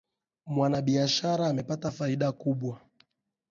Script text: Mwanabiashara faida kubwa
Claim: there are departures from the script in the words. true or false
true